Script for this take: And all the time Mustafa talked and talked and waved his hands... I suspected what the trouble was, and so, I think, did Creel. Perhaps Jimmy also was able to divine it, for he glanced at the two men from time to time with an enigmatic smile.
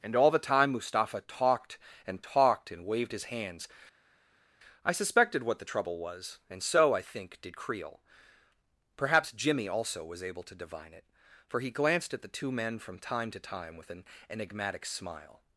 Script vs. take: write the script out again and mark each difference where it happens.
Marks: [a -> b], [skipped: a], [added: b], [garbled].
And all the time Mustafa talked and talked and waved his hands... I suspected what the trouble was, and so, I think, did Creel. Perhaps Jimmy also was able to divine it, for he glanced at the two men from time to time with an enigmatic smile.